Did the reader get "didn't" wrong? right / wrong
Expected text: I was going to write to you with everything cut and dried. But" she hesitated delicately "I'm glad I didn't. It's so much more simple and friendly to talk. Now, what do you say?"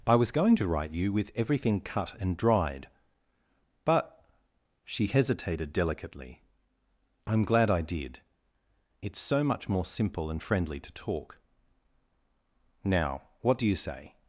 wrong